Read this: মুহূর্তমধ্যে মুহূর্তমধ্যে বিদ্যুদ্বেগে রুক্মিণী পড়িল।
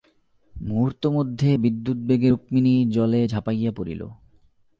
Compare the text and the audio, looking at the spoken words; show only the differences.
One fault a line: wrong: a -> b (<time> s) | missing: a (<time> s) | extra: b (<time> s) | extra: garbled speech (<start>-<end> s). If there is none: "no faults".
missing: মুহূর্তমধ্যে (1.5 s)
extra: জলে ঝাঁপাইয়া (2.9 s)